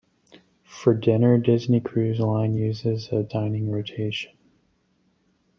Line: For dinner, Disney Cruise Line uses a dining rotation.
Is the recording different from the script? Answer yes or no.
no